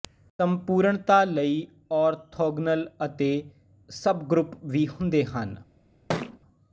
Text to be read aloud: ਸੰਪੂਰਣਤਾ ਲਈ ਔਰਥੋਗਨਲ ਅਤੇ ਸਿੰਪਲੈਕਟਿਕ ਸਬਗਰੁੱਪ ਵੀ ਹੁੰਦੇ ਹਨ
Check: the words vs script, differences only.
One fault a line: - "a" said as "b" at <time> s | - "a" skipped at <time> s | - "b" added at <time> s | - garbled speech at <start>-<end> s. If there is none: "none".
- "ਸਿੰਪਲੈਕਟਿਕ" skipped at 3.3 s